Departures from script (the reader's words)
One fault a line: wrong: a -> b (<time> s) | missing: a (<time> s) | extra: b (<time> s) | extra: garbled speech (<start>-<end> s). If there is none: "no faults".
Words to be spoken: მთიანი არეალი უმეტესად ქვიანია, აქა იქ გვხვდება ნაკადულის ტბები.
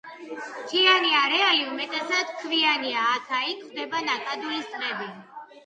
no faults